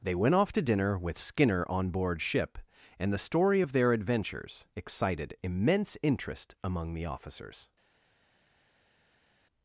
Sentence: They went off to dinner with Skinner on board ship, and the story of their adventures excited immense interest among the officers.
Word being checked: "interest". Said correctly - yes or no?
yes